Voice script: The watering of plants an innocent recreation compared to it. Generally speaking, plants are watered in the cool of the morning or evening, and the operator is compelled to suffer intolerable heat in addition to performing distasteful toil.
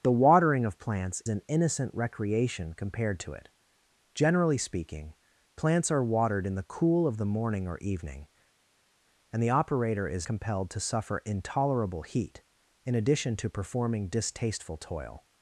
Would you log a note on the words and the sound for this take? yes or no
no